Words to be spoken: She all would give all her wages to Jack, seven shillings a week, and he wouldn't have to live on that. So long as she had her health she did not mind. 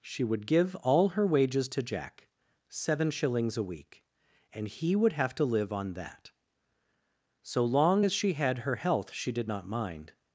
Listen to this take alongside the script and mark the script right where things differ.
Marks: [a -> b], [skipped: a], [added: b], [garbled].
She [skipped: all] would give all her wages to Jack, seven shillings a week, and he [wouldn't -> would] have to live on that. So long as she had her health she did not mind.